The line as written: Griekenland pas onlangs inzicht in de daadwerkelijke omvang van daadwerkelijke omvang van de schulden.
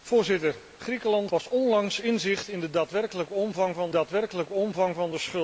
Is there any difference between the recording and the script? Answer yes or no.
no